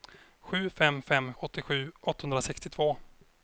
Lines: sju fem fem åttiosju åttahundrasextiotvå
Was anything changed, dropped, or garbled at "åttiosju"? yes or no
no